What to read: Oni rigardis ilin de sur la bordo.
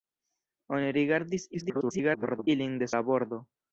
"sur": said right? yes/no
no